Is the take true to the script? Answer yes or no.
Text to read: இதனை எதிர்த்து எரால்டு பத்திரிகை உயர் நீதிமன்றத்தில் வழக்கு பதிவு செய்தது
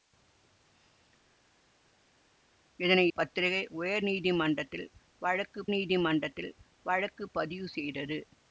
no